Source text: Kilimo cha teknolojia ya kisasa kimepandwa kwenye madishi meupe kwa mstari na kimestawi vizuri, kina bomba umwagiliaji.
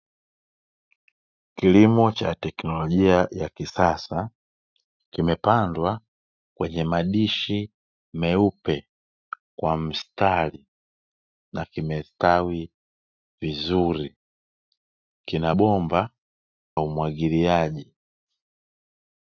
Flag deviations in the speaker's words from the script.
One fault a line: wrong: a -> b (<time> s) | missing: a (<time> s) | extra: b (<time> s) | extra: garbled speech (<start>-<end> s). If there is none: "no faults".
no faults